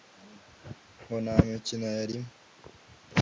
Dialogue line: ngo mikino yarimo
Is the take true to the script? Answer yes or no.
no